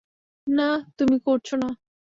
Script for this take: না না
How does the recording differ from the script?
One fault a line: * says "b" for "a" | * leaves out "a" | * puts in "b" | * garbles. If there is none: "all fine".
* puts in "তুমি করছ"